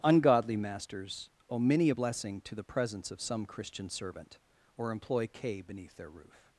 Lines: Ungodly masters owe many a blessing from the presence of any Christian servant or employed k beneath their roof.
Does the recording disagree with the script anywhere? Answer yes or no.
yes